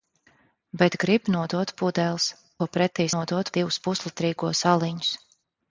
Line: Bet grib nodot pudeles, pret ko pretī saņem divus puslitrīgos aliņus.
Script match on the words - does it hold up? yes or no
no